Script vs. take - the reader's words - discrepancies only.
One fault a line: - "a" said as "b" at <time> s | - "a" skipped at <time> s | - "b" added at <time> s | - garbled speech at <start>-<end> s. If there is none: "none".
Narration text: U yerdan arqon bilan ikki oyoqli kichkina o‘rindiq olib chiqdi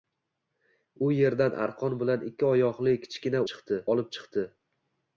- "o‘rindiq" said as "chiqdi" at 3.5 s